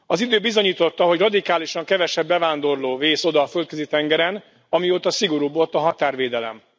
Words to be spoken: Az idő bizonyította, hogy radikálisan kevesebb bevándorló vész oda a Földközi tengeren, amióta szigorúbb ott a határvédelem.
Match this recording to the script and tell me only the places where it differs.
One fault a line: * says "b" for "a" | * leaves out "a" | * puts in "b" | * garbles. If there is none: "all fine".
all fine